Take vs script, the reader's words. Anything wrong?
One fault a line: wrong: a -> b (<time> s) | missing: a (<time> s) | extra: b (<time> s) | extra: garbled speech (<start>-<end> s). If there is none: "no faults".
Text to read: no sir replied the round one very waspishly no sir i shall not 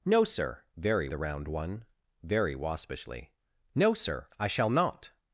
wrong: replied -> very (0.8 s)